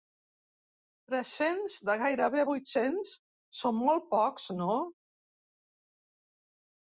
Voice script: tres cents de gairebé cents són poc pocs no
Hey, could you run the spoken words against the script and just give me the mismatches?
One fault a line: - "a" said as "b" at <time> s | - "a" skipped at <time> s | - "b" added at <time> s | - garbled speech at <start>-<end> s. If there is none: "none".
- "vuit" added at 2.5 s
- "poc" said as "molt" at 3.9 s